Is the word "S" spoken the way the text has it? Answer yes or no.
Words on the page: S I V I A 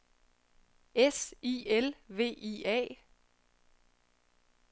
yes